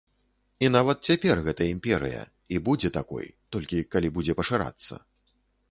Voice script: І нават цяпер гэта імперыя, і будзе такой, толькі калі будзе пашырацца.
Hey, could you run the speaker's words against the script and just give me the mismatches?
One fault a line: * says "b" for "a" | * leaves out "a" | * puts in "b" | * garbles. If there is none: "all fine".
all fine